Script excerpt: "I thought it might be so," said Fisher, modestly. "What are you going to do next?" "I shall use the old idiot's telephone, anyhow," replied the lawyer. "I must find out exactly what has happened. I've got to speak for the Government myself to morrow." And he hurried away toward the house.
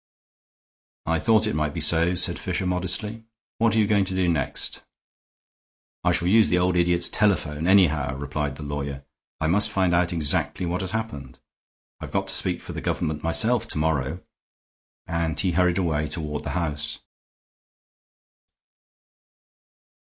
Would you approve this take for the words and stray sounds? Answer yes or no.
yes